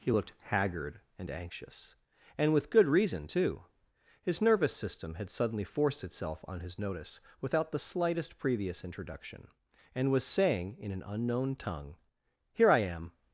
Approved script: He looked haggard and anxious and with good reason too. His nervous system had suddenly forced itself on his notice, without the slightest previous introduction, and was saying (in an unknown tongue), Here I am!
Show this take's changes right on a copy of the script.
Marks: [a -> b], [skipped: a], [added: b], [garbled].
He looked haggard and anxious and with good reason too. His nervous system had suddenly forced itself on his notice, without the slightest previous introduction, and was saying (in an unknown tongue), Here I am!